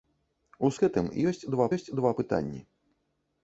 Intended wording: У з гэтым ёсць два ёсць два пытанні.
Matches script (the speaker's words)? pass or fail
pass